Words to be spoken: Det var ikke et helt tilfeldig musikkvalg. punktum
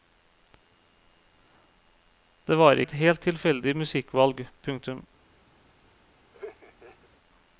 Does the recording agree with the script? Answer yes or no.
no